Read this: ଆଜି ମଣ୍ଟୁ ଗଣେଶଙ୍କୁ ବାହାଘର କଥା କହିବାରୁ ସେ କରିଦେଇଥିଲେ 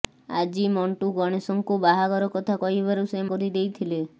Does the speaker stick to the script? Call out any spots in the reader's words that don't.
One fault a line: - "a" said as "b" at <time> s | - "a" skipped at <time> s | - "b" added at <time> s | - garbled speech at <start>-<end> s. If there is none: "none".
none